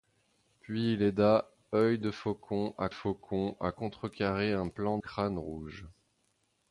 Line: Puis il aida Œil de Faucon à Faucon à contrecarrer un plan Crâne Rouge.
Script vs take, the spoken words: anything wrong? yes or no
no